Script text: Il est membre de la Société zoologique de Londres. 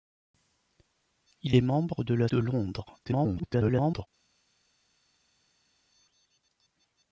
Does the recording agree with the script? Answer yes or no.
no